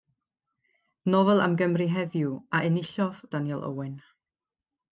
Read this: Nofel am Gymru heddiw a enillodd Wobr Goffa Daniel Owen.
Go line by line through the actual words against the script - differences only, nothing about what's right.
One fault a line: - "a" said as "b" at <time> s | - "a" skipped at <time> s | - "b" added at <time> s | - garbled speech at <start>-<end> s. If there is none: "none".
- "Wobr Goffa" skipped at 3.2 s